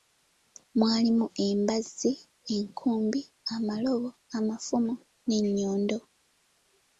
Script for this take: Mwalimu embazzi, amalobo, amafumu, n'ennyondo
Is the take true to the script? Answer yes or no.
no